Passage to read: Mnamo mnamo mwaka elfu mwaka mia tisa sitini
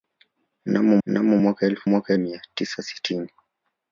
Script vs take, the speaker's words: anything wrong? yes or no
no